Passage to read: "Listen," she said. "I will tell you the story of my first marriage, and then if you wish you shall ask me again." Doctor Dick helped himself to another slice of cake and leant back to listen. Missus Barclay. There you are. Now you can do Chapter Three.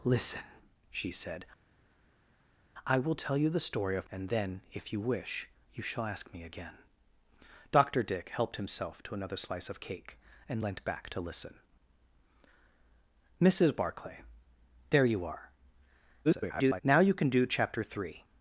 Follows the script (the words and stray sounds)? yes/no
no